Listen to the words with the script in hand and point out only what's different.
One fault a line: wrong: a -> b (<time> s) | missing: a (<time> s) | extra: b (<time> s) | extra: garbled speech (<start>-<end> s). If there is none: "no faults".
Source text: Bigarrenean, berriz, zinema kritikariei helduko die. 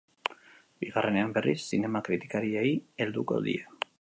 no faults